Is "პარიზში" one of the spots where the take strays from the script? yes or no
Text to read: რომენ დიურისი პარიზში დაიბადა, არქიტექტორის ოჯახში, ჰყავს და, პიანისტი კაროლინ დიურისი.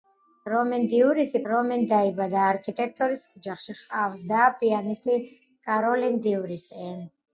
yes